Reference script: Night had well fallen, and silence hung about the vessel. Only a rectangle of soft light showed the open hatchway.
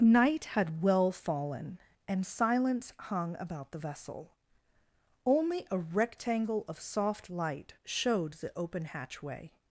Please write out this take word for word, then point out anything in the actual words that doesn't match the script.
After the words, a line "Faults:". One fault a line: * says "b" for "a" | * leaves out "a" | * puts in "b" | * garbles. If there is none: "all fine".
Night had well fallen, and silence hung about the vessel. Only a rectangle of soft light showed the open hatchway.
Faults:
all fine